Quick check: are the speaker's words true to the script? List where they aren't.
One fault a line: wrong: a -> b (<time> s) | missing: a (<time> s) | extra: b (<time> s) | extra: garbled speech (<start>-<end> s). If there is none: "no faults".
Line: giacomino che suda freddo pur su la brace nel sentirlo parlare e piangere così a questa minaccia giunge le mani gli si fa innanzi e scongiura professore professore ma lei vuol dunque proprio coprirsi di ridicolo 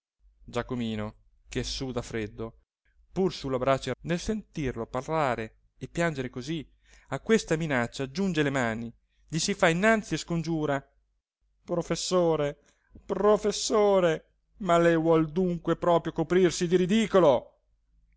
no faults